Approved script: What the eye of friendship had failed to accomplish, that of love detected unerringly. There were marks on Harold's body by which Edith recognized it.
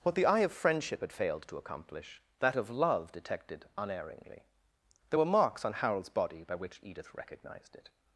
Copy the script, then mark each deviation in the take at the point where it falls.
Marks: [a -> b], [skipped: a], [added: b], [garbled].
What the eye of friendship had failed to accomplish, that of love detected unerringly. There were marks on Harold's body by which Edith recognized it.